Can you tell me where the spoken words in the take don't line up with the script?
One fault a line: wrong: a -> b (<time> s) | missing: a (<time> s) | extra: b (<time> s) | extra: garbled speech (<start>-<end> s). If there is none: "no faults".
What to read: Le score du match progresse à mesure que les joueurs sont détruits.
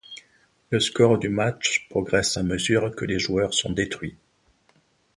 no faults